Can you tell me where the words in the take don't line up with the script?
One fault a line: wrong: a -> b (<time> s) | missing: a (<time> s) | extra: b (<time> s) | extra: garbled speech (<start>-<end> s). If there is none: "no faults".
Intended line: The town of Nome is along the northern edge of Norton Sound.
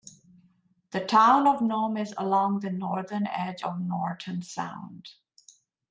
no faults